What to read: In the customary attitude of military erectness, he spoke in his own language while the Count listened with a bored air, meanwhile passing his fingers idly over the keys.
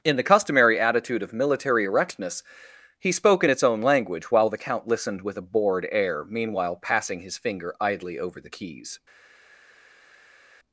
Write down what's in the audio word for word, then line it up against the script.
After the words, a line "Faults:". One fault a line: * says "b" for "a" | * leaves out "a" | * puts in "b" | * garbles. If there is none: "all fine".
In the customary attitude of military erectness, he spoke in its own language while the Count listened with a bored air, meanwhile passing his finger idly over the keys.
Faults:
* says "its" for "his"
* says "finger" for "fingers"